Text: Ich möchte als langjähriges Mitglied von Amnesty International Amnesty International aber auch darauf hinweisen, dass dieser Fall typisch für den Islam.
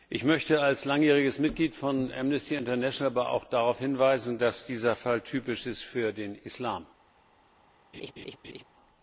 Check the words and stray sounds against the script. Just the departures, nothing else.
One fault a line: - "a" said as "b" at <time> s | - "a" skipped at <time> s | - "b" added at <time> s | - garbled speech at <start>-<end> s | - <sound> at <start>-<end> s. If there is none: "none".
- "Amnesty International" skipped at 3.1 s
- "ist" added at 5.7 s
- laugh at 7.9-8.6 s